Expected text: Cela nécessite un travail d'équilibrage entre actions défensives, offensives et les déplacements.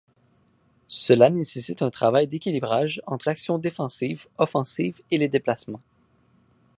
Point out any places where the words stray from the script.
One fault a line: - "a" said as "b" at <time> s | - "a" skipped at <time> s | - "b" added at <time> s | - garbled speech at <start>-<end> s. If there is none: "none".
none